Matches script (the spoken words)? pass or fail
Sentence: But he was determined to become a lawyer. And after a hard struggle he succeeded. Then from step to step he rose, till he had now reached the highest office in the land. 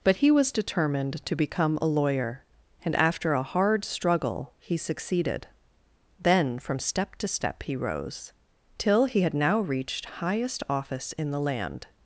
fail